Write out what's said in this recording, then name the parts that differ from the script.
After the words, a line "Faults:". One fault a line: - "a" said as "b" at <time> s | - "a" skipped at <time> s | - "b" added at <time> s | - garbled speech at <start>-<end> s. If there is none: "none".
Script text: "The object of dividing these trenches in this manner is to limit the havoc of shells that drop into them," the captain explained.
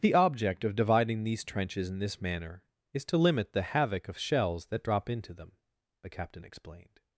"The object of dividing these trenches in this manner is to limit the havoc of shells that drop into them," the captain explained.
Faults:
none